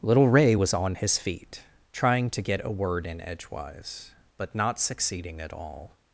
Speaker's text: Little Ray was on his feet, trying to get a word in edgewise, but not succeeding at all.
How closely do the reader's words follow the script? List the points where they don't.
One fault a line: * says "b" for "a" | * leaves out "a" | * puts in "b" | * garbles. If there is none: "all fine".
all fine